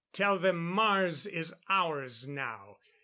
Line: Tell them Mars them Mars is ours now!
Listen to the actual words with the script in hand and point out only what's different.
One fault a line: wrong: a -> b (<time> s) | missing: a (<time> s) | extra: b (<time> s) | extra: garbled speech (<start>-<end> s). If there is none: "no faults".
missing: them Mars (1.3 s)